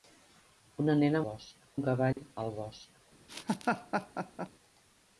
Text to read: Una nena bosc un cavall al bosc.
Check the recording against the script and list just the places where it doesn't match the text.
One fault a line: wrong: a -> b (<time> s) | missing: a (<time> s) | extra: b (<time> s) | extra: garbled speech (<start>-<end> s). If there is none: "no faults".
no faults